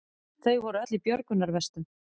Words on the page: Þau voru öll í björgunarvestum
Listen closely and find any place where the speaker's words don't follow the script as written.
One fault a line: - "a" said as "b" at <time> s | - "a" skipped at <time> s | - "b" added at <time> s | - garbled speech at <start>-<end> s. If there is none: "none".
none